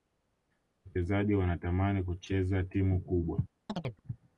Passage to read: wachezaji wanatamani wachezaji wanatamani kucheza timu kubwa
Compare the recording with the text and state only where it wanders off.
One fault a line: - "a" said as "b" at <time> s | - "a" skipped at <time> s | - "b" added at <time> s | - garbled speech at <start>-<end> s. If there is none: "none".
- "wachezaji wanatamani" skipped at 2.0 s